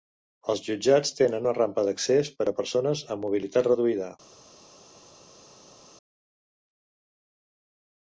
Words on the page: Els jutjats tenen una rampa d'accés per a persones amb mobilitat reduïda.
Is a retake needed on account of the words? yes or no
no